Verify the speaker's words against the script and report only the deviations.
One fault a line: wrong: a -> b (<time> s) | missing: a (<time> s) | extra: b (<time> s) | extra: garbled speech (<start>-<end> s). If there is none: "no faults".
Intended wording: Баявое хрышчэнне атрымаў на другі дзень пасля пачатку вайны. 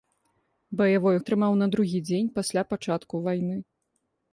missing: хрышчэнне (1.2 s)